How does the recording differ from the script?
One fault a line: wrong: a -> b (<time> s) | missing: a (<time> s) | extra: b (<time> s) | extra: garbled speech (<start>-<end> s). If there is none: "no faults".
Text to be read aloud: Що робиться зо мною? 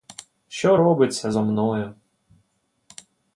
no faults